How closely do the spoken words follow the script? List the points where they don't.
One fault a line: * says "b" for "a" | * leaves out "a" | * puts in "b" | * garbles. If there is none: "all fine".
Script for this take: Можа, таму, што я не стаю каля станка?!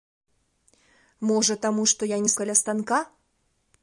* leaves out "стаю"